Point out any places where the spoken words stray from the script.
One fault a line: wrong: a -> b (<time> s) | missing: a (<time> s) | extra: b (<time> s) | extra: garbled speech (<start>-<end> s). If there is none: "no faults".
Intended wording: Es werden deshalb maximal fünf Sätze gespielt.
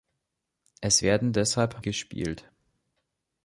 missing: maximal fünf Sätze (1.8 s)